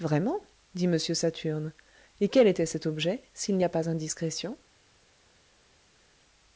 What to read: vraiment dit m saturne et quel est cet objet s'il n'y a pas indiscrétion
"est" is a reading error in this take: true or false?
true